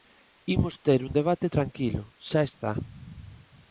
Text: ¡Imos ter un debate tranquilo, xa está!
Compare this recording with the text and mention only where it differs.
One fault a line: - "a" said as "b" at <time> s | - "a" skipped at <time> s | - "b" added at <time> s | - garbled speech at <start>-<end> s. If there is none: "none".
none